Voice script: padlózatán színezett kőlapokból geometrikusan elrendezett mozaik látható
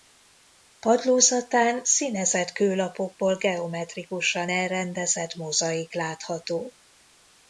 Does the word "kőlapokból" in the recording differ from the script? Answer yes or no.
no